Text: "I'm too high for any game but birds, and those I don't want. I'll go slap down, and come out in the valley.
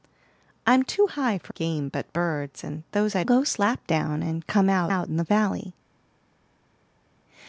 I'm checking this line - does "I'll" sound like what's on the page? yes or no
no